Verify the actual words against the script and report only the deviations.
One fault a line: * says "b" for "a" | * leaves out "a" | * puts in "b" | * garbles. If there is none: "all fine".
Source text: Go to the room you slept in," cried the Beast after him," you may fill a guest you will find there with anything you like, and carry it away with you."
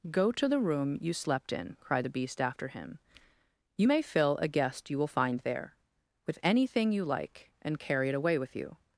all fine